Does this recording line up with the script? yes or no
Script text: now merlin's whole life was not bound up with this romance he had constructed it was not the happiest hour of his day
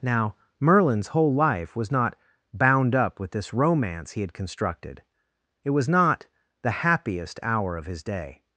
yes